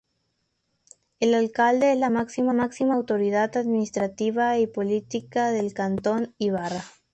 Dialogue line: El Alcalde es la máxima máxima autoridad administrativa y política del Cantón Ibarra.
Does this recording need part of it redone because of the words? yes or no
no